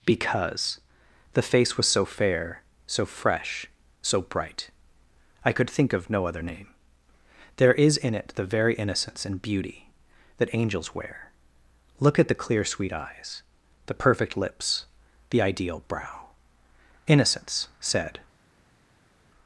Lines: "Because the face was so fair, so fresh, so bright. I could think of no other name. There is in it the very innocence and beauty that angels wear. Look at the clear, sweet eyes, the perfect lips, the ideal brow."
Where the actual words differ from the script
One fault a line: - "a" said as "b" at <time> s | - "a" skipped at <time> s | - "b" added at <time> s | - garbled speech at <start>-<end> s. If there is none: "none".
- "Innocence said" added at 17.0 s